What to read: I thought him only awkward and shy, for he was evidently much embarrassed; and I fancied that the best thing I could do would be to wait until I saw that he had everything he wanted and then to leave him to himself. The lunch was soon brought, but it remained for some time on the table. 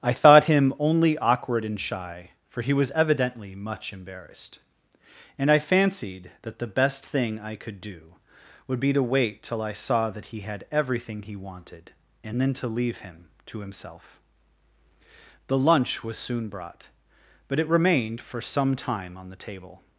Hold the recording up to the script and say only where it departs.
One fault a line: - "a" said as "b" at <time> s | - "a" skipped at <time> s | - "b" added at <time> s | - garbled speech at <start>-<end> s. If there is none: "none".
- "until" said as "till" at 9.4 s